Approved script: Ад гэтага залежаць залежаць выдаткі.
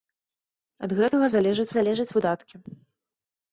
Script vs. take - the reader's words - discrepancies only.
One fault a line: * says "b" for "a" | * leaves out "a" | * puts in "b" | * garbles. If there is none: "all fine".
all fine